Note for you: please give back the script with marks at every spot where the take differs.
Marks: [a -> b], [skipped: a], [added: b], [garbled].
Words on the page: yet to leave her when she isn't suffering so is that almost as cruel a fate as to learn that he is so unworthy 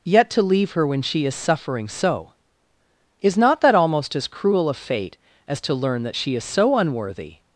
yet to leave her when she [isn't -> is] suffering so is [added: not] that almost as cruel a fate as to learn that [he -> she] is so unworthy